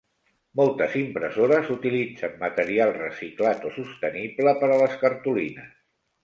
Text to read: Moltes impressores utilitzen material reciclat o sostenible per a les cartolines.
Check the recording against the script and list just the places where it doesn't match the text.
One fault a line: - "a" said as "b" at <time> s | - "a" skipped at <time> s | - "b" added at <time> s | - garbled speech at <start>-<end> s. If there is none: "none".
none